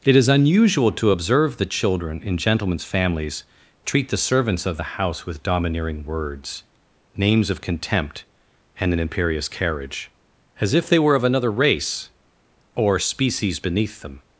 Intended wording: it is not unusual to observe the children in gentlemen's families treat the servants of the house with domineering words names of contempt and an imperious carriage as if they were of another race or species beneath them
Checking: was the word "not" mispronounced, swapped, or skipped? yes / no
yes